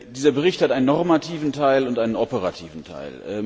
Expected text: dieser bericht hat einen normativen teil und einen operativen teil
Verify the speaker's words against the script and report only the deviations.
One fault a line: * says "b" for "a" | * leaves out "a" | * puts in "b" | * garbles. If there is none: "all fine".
all fine